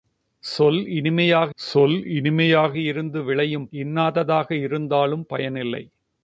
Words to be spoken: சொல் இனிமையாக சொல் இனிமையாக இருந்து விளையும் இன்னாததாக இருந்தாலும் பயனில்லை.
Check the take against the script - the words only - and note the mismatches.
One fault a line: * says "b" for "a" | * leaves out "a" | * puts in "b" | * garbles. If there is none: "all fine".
all fine